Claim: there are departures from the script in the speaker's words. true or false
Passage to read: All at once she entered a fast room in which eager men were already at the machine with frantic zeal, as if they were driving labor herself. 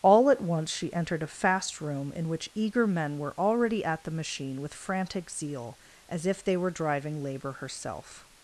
false